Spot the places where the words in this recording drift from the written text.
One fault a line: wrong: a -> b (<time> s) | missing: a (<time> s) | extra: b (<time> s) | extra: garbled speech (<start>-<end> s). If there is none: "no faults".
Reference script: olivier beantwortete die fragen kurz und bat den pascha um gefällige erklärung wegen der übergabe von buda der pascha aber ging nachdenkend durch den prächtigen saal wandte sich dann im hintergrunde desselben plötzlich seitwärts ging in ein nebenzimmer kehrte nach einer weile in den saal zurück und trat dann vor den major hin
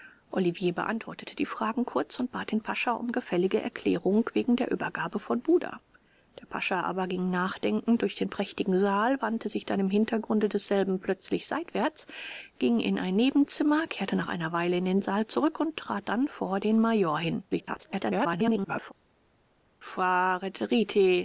extra: garbled speech (17.5-18.9 s)